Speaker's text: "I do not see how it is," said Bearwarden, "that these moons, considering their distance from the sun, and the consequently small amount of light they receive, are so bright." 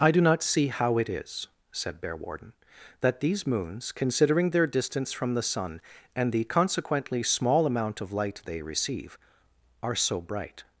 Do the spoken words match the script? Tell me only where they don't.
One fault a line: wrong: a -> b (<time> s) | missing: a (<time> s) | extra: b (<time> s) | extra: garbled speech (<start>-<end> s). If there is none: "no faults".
no faults